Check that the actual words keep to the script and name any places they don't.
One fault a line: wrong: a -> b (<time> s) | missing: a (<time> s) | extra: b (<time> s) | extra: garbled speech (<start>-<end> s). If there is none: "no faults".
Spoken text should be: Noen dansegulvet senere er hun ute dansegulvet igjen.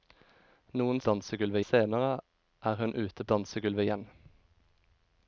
no faults